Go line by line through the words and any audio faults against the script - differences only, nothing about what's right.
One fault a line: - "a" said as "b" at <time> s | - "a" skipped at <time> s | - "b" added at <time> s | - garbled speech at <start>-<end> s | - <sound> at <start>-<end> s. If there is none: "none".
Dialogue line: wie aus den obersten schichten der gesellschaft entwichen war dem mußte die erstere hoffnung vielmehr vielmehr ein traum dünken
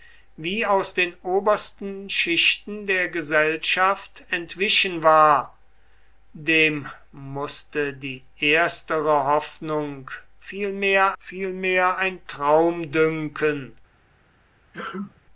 - sneeze at 14.7-15.2 s